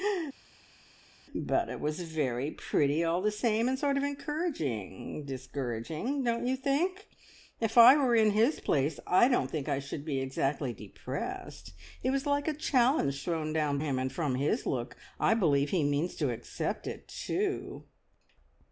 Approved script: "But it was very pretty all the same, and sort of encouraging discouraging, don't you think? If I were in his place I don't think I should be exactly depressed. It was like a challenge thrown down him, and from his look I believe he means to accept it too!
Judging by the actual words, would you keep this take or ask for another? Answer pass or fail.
pass